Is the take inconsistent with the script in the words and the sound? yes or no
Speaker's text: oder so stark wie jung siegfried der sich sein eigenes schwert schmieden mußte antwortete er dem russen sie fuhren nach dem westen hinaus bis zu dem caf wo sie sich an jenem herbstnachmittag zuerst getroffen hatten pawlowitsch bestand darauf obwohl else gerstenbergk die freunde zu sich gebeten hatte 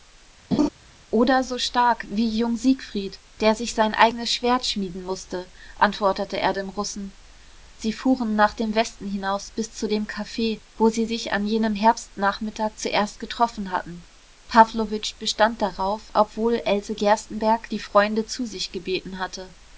yes